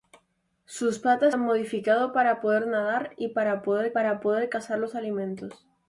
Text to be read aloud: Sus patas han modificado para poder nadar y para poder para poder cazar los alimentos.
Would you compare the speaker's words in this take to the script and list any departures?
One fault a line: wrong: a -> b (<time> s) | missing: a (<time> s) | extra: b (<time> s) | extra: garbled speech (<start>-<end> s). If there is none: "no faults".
no faults